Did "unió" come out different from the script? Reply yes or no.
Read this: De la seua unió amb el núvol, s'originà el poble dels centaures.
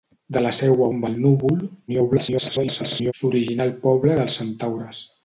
yes